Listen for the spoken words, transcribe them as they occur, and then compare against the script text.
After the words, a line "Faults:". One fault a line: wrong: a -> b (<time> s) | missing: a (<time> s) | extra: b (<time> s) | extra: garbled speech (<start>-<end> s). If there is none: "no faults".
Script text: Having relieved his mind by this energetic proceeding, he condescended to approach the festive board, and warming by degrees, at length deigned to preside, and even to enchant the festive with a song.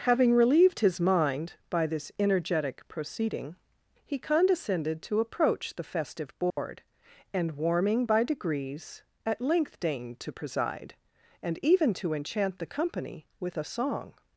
Having relieved his mind by this energetic proceeding, he condescended to approach the festive board, and warming by degrees, at length deigned to preside, and even to enchant the company with a song.
Faults:
wrong: festive -> company (12.7 s)